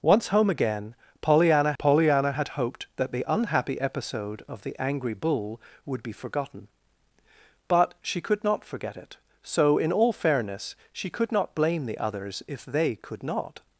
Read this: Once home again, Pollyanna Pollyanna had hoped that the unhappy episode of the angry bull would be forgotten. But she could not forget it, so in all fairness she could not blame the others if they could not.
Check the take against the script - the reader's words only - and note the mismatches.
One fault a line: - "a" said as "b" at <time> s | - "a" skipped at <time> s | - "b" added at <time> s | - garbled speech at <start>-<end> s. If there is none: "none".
none